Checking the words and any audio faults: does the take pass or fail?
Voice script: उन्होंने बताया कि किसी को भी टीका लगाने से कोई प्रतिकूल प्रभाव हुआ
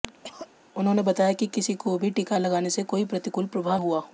fail